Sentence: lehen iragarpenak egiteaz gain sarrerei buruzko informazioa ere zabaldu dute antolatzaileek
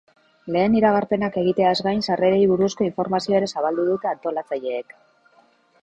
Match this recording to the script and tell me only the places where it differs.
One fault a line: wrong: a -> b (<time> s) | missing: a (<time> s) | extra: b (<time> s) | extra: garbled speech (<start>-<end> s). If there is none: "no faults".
no faults